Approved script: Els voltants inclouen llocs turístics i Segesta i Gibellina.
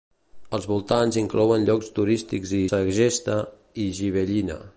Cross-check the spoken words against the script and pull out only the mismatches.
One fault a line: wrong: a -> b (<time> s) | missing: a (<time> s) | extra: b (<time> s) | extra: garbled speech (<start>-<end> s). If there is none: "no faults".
no faults